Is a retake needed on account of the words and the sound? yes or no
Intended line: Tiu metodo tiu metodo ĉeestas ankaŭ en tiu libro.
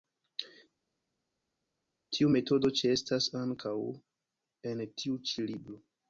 yes